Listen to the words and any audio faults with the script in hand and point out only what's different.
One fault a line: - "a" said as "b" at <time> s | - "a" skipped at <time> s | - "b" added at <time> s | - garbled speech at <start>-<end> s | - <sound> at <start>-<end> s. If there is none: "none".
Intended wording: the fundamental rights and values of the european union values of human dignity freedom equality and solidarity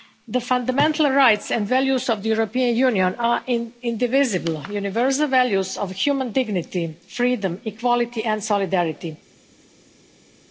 - "are indivisible universal" added at 3.2 s